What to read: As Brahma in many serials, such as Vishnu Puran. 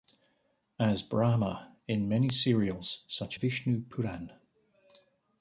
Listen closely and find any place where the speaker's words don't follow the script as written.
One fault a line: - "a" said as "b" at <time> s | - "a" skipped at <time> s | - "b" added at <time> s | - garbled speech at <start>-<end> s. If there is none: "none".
- "as" skipped at 3.4 s